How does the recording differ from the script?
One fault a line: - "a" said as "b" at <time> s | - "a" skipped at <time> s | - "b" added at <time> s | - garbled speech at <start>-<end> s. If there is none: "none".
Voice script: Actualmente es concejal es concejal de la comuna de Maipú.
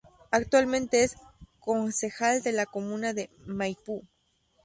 - "es concejal" skipped at 2.4 s